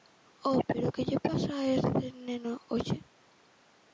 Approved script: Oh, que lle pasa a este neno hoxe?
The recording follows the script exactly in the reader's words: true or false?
false